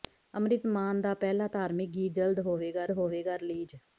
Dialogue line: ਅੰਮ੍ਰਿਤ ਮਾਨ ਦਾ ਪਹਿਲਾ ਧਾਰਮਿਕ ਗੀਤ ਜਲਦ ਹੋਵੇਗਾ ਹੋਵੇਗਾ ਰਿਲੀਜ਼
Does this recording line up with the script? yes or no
yes